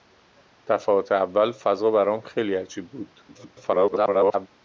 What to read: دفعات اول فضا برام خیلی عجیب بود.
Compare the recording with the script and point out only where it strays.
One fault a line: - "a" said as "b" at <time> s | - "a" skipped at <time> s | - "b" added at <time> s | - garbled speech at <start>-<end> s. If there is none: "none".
- garbled speech at 3.3-4.5 s